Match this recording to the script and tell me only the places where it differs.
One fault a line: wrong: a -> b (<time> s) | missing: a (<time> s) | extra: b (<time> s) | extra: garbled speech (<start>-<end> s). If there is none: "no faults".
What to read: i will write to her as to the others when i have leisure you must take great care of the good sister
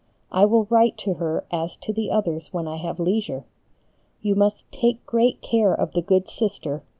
no faults